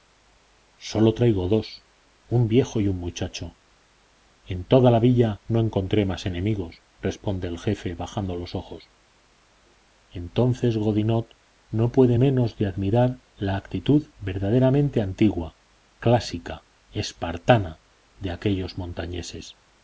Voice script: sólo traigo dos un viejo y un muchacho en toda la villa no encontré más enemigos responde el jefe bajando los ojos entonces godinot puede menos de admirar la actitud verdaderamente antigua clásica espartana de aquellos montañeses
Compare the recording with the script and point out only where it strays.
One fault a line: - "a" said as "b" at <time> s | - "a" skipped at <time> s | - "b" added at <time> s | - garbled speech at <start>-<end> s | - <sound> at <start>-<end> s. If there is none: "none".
- "no" added at 11.7 s